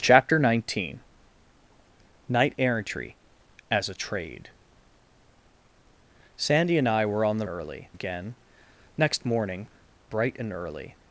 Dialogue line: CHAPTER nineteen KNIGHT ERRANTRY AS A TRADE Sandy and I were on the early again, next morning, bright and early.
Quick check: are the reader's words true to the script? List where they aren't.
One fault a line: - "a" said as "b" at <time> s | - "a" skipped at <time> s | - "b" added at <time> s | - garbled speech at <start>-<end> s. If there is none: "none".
none